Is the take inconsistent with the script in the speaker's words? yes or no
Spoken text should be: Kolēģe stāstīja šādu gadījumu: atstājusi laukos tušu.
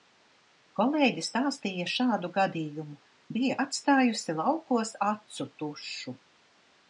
yes